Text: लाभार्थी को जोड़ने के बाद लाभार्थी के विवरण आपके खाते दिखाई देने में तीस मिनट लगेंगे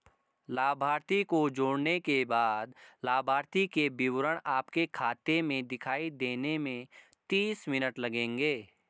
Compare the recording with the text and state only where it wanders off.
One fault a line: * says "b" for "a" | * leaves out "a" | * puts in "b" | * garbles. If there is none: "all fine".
* puts in "में"